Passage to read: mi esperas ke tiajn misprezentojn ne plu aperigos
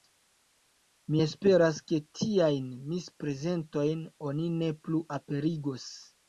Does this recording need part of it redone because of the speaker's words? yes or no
yes